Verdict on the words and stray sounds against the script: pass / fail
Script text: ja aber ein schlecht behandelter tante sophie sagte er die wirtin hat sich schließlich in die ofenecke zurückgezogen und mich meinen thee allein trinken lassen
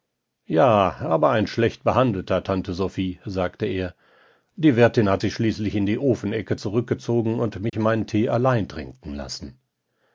fail